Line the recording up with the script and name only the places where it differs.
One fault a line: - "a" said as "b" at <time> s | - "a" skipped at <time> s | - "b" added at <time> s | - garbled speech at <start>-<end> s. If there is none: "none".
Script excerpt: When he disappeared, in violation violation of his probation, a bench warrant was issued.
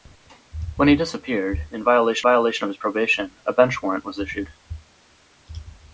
none